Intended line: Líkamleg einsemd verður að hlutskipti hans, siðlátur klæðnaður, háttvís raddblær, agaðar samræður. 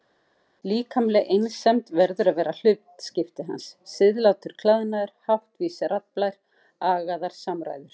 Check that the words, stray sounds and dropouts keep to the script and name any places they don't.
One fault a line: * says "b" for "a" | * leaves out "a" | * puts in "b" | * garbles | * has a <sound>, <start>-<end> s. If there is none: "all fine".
* puts in "vera"